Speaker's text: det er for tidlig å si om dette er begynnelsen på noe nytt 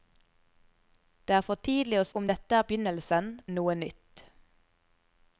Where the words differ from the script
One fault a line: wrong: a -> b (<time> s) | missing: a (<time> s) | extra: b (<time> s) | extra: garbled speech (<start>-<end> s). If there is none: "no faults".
missing: si (2.1 s)
missing: på (3.3 s)